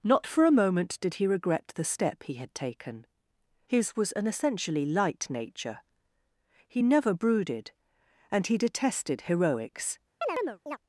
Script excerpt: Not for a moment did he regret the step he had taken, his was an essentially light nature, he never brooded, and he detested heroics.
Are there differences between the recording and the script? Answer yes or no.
no